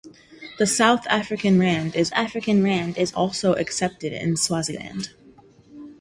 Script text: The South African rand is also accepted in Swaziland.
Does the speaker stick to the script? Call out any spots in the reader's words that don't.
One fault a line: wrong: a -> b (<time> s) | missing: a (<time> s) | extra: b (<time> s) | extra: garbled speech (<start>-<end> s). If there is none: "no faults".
extra: African rand is (2.2 s)